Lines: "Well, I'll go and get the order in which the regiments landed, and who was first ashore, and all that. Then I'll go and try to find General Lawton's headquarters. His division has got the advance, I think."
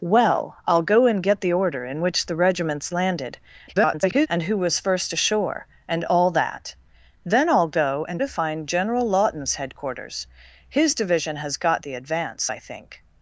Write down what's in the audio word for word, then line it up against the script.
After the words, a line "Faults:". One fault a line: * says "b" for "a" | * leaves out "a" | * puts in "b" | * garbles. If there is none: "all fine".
"Well, I'll go and get the order in which the regiments landed, [garbled] and who was first ashore, and all that. Then I'll go and to find General Lawton's headquarters. His division has got the advance, I think."
Faults:
* garbles
* leaves out "try"